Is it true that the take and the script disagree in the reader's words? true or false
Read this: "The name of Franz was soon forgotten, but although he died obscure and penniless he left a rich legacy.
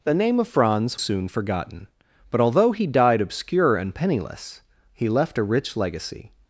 true